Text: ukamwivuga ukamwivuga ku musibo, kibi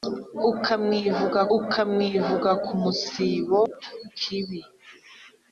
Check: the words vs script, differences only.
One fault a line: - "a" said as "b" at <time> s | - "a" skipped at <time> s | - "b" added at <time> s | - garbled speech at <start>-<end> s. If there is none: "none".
none